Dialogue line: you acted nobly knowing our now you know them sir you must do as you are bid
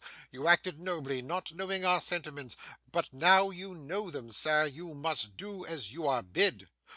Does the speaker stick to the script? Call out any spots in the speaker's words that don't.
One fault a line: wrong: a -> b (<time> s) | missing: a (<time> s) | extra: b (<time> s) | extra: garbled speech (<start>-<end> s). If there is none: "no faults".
extra: not (1.2 s)
extra: sentiments but (2.0 s)